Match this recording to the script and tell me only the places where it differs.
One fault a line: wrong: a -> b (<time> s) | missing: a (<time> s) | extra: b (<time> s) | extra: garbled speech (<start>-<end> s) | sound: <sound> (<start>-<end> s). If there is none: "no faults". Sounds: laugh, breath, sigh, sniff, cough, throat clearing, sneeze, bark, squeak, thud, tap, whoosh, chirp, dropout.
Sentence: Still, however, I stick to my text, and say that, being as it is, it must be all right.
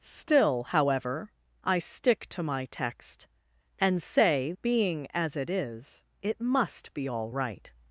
missing: that (4.5 s)